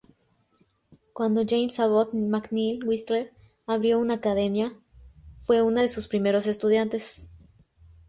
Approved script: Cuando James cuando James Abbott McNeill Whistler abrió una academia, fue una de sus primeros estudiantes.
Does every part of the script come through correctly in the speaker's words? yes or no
no